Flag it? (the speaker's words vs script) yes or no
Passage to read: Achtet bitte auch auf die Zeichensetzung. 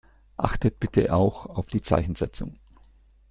no